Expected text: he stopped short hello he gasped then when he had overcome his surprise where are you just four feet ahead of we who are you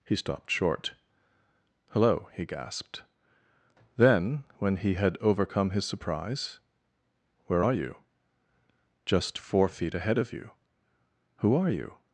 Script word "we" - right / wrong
wrong